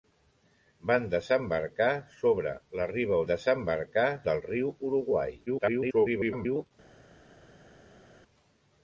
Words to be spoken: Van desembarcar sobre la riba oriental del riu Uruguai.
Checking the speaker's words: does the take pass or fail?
fail